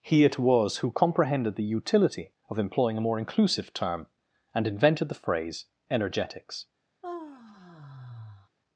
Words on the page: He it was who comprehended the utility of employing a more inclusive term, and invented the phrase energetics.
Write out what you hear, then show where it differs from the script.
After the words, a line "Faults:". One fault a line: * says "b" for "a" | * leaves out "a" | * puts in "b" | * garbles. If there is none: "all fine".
He it was who comprehended the utility of employing a more inclusive term, and invented the phrase energetics.
Faults:
all fine